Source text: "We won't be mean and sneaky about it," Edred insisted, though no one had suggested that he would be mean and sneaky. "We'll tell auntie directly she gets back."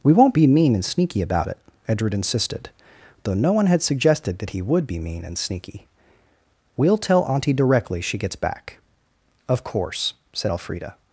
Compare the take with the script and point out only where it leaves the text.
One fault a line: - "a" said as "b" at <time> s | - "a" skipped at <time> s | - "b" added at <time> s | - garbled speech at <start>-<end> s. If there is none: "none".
- "Of course said Elfrida" added at 9.5 s